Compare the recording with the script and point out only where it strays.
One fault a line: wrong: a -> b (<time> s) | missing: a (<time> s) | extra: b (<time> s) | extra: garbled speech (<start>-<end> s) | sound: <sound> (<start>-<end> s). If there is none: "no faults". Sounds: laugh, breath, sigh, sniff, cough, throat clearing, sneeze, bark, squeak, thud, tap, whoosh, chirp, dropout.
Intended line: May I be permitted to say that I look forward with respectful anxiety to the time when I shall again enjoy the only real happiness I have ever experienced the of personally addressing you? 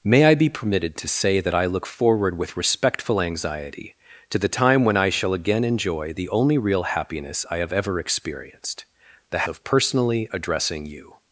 no faults